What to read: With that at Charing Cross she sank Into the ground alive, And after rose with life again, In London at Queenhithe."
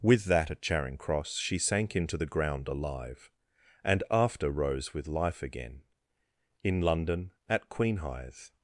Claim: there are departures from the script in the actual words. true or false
false